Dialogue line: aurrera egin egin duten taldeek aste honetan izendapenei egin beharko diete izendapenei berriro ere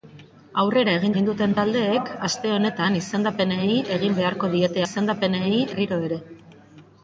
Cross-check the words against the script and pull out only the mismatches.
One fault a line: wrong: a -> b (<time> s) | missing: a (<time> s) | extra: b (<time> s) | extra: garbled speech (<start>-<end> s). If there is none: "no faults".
no faults